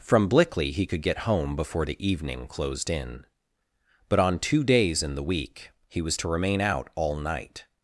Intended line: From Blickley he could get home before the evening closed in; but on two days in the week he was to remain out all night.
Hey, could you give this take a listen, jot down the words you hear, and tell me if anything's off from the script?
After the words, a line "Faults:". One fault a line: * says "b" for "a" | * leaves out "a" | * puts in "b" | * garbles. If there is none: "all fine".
From Blickley he could get home before the evening closed in; but on two days in the week he was to remain out all night.
Faults:
all fine